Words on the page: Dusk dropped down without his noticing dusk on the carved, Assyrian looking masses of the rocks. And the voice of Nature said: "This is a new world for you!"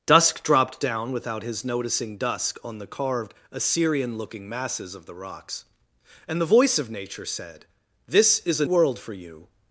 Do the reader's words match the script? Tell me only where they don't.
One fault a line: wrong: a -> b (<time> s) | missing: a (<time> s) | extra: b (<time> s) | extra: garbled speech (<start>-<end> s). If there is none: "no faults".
missing: new (8.7 s)